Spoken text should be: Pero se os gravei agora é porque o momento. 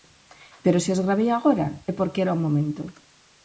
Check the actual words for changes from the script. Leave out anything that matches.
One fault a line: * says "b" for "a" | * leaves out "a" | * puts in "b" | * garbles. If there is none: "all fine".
* puts in "era"